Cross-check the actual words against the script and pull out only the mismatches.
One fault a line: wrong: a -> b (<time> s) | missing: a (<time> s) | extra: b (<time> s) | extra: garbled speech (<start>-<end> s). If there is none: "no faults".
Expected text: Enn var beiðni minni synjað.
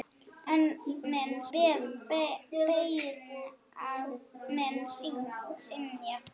wrong: var -> minni (1.1 s)